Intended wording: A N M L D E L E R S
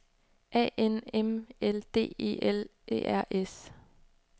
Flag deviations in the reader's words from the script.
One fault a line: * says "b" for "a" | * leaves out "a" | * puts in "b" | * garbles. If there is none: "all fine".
all fine